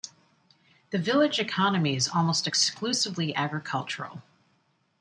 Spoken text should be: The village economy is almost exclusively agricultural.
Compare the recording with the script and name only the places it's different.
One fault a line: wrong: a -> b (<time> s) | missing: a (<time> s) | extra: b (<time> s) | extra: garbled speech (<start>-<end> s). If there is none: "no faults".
no faults